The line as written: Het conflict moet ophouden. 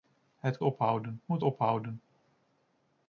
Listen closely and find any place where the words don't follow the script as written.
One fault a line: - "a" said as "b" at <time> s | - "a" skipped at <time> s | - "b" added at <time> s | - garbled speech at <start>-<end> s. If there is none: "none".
- "conflict" said as "ophouden" at 0.6 s